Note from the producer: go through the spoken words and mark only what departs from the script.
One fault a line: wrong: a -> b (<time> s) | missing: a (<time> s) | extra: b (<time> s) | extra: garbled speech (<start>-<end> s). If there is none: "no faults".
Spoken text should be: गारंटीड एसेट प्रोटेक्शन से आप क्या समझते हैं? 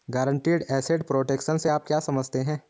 no faults